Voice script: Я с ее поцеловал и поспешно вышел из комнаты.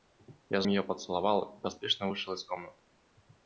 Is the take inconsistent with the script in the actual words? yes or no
no